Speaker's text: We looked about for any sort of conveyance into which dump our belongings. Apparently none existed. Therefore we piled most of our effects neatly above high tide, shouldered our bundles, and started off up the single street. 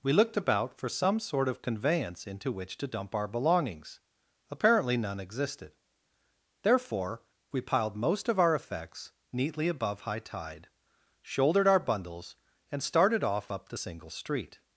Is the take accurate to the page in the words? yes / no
no